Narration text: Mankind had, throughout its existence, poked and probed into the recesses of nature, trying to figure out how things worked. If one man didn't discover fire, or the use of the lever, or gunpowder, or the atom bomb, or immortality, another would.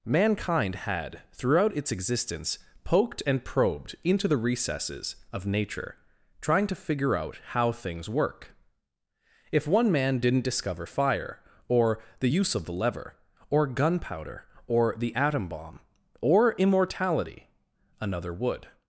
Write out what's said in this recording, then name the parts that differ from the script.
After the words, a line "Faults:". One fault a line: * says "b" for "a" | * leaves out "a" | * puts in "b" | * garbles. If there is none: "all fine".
Mankind had, throughout its existence, poked and probed into the recesses of nature, trying to figure out how things work. If one man didn't discover fire, or the use of the lever, or gunpowder, or the atom bomb, or immortality, another would.
Faults:
* says "work" for "worked"